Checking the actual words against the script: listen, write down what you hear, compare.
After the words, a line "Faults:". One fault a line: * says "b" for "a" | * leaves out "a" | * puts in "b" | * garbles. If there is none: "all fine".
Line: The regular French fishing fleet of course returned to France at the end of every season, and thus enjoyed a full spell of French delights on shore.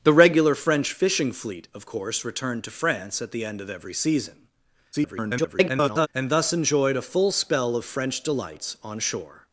The regular French fishing fleet of course returned to France at the end of every season, [garbled] and thus enjoyed a full spell of French delights on shore.
Faults:
* garbles